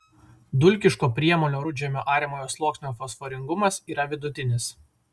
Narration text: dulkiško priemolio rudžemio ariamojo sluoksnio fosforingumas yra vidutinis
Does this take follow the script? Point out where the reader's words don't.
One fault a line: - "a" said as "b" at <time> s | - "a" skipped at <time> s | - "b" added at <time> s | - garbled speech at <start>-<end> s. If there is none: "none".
none